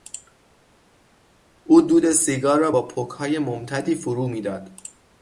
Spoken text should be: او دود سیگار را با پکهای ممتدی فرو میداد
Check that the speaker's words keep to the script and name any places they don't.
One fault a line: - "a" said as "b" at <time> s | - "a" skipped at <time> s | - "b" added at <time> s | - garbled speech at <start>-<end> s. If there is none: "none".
none